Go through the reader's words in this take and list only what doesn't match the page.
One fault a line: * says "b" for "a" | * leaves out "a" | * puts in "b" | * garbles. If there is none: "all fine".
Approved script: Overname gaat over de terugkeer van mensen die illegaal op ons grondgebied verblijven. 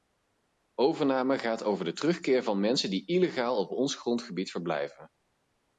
all fine